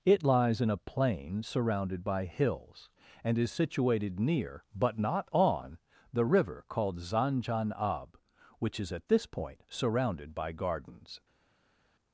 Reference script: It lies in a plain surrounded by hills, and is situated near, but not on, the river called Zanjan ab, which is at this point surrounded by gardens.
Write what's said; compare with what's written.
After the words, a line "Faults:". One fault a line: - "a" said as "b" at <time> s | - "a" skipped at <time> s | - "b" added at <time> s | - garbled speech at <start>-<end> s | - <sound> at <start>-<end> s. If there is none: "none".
It lies in a plain surrounded by hills, and is situated near, but not on, the river called Zanjan ab, which is at this point surrounded by gardens.
Faults:
none